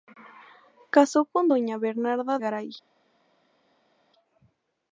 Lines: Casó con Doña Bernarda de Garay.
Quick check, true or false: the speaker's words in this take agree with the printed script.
false